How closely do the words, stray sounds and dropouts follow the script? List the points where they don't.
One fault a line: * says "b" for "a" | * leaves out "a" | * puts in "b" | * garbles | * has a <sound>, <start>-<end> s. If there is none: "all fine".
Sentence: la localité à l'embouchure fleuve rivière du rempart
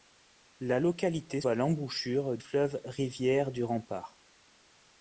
all fine